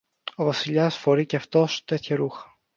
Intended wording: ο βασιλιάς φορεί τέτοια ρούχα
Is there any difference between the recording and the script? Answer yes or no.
yes